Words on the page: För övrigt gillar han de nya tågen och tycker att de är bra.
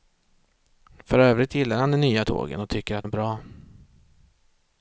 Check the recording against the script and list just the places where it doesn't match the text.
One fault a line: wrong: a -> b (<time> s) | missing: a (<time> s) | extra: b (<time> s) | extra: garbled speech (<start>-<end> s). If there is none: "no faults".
missing: de (3.0 s)